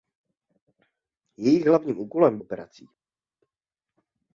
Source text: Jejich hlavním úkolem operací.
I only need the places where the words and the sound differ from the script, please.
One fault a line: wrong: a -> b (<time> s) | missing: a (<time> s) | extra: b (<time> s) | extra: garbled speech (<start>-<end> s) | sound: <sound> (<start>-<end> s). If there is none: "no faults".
no faults